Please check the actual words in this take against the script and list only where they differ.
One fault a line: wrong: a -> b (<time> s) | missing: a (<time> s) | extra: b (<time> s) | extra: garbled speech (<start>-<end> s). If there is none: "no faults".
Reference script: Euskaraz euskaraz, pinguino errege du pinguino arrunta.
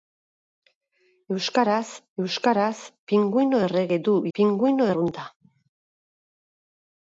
no faults